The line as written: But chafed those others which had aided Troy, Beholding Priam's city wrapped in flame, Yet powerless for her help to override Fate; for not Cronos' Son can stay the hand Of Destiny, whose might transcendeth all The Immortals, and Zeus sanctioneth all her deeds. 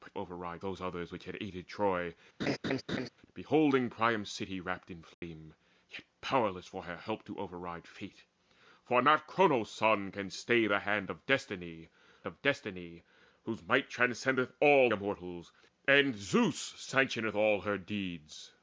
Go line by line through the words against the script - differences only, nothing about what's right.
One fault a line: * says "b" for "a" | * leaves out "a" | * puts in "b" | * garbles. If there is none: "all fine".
* says "override" for "chafed"
* puts in "Of Destiny"
* leaves out "The"